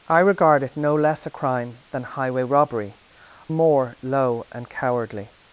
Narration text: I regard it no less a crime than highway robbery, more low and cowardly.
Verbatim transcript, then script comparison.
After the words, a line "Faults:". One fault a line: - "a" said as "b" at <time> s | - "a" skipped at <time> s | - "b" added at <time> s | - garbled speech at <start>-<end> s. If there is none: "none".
I regard it no less a crime than highway robbery, more low and cowardly.
Faults:
none